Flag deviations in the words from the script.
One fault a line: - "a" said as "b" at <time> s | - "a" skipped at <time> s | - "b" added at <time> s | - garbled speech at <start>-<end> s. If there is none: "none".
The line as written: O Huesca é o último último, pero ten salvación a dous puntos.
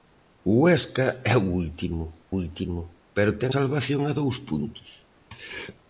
none